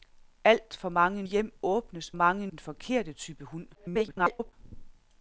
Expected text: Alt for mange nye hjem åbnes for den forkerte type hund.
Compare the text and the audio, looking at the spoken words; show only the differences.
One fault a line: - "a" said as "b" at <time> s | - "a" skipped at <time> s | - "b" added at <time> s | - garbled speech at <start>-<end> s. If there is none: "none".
- "nye" skipped at 1.2 s
- "for" said as "mange" at 2.1 s
- garbled speech at 3.7-4.5 s